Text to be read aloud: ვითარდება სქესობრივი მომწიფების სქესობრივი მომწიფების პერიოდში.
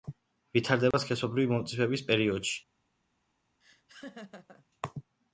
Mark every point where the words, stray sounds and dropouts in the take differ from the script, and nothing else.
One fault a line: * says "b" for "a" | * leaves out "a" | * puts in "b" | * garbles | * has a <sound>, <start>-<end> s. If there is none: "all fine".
* has a dropout, 0.9-0.9 s
* leaves out "სქესობრივი მომწიფების"
* has a laugh, 3.6-4.7 s